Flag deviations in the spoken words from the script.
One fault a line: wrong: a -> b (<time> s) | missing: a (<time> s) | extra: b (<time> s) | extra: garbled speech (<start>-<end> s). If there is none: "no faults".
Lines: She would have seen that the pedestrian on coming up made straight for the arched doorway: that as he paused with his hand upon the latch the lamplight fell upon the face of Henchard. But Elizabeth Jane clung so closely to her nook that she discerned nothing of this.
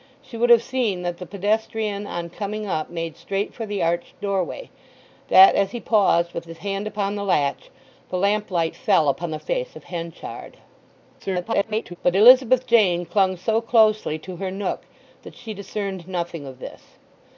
extra: garbled speech (11.2-12.0 s)